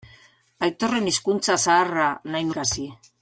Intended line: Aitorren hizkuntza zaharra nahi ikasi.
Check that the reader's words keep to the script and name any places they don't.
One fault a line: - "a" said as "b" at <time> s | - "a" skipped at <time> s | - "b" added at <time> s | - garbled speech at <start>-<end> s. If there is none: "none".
none